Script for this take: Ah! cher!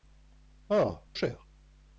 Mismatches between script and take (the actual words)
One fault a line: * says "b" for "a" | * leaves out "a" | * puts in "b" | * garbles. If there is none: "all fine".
all fine